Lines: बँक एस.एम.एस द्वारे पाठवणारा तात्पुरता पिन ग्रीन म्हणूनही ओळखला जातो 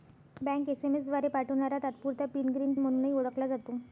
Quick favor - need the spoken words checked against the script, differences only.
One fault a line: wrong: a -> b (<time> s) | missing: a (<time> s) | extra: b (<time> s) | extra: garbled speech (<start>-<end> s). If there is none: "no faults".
no faults